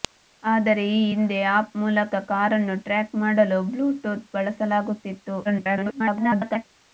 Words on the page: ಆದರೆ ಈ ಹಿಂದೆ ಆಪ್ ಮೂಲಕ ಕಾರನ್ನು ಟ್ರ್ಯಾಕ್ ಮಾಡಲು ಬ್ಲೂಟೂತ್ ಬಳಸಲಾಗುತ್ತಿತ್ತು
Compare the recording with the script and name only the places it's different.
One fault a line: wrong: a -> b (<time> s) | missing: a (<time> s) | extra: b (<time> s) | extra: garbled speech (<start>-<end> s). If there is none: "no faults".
extra: garbled speech (5.4-6.7 s)